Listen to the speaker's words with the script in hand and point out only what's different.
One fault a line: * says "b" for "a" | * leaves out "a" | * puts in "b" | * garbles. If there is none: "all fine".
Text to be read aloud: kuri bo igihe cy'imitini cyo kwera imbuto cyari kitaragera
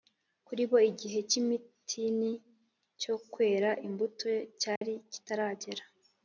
all fine